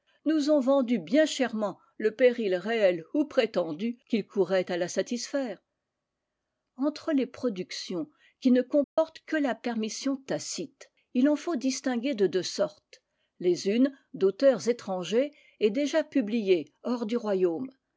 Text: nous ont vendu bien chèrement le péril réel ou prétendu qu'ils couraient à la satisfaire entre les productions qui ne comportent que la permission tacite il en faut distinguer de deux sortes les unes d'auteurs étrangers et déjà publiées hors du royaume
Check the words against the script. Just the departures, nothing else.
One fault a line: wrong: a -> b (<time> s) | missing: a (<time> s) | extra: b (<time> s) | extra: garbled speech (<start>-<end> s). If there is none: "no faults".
no faults